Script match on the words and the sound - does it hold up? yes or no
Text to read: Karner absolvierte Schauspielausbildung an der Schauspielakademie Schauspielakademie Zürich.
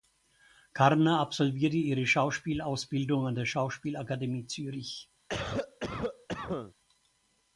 no